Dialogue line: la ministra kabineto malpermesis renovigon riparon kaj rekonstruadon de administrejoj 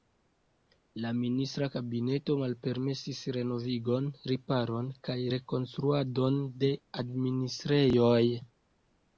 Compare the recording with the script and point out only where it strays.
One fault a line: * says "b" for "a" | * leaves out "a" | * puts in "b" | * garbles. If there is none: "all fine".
all fine